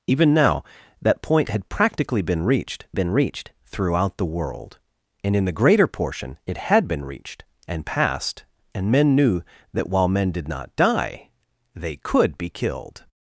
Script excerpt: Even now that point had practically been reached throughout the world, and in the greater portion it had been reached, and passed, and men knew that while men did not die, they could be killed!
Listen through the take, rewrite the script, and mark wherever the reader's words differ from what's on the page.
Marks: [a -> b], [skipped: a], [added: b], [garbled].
Even now that point had practically been reached [added: been reached] throughout the world, and in the greater portion it had been reached, and passed, and men knew that while men did not die, they could be killed!